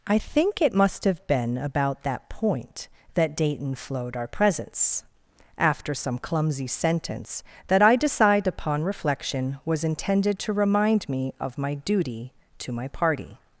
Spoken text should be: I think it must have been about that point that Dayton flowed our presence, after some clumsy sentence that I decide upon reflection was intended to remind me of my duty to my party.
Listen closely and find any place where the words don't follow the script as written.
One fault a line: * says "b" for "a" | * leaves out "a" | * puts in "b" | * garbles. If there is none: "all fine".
all fine